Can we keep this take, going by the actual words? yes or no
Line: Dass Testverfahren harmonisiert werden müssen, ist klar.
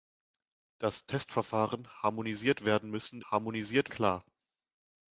no